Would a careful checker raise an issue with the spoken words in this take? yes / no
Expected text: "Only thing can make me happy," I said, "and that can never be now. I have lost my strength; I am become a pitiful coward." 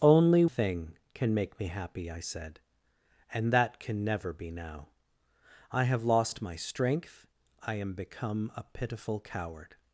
no